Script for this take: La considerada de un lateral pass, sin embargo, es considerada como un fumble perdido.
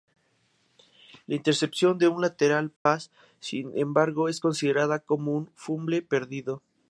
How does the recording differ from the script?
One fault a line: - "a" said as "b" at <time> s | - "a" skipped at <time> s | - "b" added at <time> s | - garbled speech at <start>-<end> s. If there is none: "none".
- "considerada" said as "intercepción" at 1.4 s